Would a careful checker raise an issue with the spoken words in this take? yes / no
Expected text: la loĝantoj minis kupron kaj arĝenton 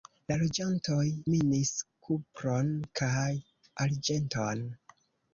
no